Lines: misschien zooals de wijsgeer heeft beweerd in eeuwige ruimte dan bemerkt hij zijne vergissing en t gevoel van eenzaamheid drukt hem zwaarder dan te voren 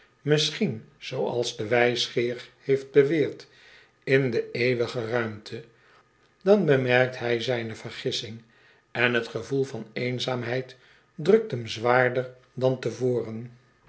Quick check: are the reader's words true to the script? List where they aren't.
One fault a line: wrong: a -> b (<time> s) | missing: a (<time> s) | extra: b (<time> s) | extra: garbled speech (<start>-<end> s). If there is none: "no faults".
extra: de (4.3 s)